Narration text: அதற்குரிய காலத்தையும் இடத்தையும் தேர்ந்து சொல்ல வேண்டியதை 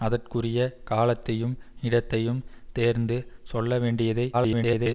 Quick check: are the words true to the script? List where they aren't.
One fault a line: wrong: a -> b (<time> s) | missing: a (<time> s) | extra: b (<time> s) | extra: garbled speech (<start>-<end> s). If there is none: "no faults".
extra: garbled speech (4.3-4.9 s)